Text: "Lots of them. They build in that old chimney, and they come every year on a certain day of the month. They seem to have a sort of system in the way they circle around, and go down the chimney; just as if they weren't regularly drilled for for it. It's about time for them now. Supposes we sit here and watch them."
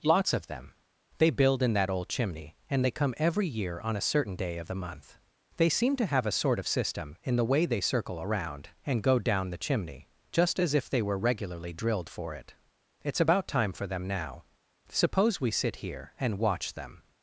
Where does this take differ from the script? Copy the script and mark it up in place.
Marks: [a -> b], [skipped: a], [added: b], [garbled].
"Lots of them. They build in that old chimney, and they come every year on a certain day of the month. They seem to have a sort of system in the way they circle around, and go down the chimney; just as if they [weren't -> were] regularly drilled for [skipped: for] it. It's about time for them now. [Supposes -> Suppose] we sit here and watch them."